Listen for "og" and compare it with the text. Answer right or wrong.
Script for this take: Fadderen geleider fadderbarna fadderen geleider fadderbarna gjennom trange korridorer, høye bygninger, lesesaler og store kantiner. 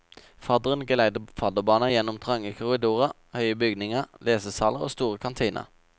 right